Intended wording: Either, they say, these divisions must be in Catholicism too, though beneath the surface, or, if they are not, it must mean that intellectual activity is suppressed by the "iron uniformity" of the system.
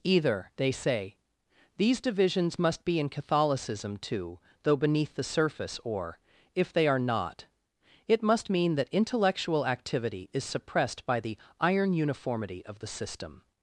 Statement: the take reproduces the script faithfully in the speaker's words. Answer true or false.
true